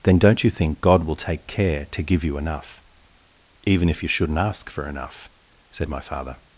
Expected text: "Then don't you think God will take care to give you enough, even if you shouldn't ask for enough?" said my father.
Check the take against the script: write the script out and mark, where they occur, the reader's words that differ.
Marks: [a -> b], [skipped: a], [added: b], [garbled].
"Then don't you think God will take care to give you enough, even if you shouldn't ask for enough?" said my father.